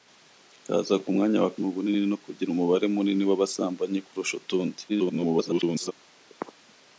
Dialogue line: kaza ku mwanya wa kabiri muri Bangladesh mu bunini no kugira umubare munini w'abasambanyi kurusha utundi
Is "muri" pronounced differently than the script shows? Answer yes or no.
yes